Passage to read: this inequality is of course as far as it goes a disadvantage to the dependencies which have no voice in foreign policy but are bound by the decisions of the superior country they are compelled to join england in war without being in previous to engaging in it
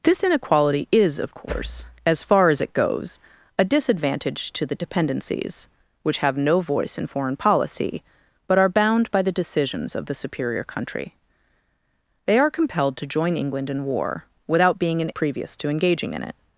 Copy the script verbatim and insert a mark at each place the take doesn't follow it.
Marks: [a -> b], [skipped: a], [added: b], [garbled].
this inequality is of course as far as it goes a disadvantage to the dependencies which have no voice in foreign policy but are bound by the decisions of the superior country they are compelled to join england in war without being in previous to engaging in it